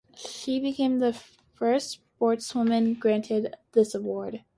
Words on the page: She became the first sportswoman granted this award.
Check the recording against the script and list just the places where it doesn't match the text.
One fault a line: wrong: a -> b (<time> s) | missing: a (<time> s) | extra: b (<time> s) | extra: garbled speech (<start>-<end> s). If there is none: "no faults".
no faults